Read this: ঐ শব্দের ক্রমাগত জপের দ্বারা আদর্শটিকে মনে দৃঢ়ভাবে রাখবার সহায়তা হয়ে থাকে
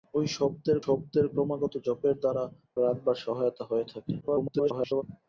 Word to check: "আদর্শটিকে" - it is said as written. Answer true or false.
false